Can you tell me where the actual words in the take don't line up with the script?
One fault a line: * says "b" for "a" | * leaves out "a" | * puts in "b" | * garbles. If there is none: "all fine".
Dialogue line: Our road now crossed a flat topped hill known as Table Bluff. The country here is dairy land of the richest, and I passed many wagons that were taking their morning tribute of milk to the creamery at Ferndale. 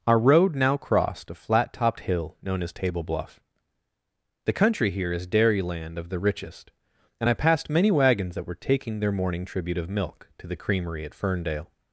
all fine